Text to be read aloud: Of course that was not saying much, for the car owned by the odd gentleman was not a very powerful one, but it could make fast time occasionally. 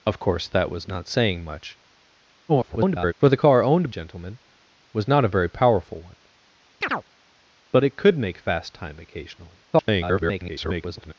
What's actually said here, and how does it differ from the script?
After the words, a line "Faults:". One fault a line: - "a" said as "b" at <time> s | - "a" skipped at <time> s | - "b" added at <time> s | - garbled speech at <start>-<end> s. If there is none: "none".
Of course that was not saying much, [garbled] for the car owned gentleman was not a very powerful one, but it could make fast time occasionally. [garbled]
Faults:
- garbled speech at 2.5-3.1 s
- "by the odd" skipped at 3.9 s
- garbled speech at 9.7-11.1 s